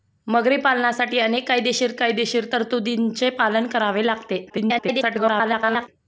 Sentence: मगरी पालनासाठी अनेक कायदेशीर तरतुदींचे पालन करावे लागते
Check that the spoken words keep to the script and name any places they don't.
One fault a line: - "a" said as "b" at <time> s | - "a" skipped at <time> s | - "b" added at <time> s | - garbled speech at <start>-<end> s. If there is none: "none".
- "कायदेशीर" added at 2.0 s
- garbled speech at 4.5-5.9 s